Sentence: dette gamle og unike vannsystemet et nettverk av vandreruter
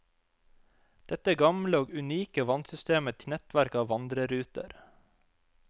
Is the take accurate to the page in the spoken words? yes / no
yes